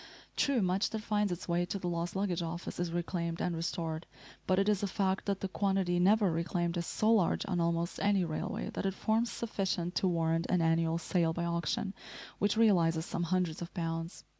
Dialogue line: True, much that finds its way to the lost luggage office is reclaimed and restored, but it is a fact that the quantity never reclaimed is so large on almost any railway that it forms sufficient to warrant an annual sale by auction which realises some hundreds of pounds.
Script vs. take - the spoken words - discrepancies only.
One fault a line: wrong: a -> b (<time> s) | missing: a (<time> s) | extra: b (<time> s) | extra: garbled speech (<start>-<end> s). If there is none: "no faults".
no faults